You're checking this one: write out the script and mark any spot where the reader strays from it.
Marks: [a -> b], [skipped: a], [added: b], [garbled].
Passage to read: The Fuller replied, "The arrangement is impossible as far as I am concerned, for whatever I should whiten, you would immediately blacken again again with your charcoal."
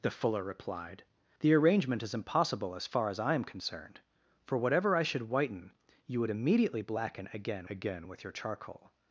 The Fuller replied, "The arrangement is impossible as far as I am concerned, for whatever I should whiten, you would immediately blacken again again with your charcoal."